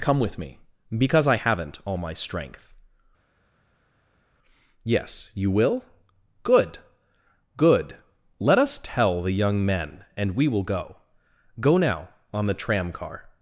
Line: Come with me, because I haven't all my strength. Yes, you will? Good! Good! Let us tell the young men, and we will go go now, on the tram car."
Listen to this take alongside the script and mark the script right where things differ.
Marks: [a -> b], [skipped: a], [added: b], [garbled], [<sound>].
Come with me, because I haven't all my strength. Yes, you will? Good! Good! Let us tell the young men, and we will go go now, on the tram car."